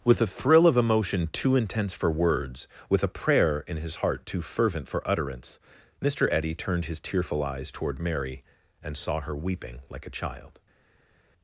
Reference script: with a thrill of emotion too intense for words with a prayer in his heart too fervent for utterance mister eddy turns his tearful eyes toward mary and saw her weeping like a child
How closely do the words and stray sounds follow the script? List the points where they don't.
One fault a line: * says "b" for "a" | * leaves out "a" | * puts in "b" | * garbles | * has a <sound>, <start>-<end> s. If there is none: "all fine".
* says "turned" for "turns"